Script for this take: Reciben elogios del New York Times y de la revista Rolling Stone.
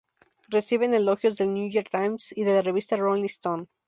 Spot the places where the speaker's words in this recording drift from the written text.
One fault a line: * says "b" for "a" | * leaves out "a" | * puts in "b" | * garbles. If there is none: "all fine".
all fine